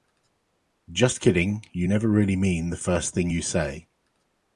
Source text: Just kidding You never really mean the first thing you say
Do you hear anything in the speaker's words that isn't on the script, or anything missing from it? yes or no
no